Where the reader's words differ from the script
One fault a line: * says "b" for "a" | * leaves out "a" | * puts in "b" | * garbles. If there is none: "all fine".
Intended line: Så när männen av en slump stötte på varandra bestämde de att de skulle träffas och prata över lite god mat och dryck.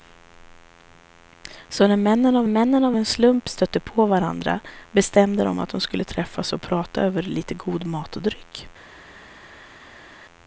* puts in "männen av"